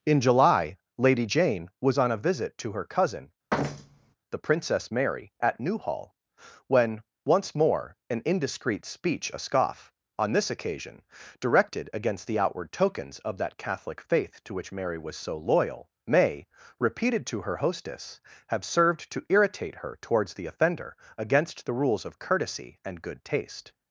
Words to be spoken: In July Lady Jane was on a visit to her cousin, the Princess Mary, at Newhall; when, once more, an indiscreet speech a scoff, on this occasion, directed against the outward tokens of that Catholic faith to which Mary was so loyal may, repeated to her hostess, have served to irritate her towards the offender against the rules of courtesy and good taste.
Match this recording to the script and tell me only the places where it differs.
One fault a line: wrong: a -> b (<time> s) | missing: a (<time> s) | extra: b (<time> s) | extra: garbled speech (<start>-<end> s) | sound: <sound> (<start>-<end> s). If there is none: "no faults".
sound: thud (3.5-4.1 s)